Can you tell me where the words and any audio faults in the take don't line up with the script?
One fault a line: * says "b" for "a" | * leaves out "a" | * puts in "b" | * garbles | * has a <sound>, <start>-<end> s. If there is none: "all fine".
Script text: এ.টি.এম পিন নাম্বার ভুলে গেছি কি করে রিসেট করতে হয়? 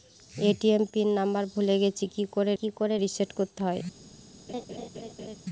* puts in "কি করে"
* has a laugh, 4.5-5.4 s